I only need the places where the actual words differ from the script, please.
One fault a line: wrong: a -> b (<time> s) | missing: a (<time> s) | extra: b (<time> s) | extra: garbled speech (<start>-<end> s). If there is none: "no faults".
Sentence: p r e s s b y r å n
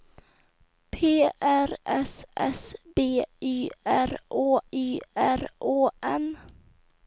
missing: e (1.8 s)
extra: y r å (4.7 s)